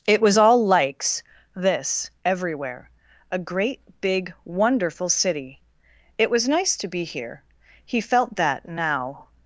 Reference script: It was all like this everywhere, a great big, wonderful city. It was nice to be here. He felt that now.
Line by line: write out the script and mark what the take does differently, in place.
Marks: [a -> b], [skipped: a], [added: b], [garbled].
It was all [like -> likes] this everywhere, a great big, wonderful city. It was nice to be here. He felt that now.